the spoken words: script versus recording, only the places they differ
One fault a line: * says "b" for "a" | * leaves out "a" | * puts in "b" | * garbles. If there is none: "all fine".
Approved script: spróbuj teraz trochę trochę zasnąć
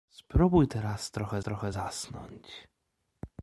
all fine